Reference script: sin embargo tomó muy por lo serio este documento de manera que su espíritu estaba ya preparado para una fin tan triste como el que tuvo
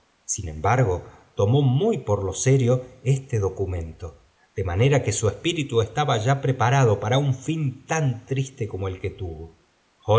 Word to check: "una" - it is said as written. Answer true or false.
false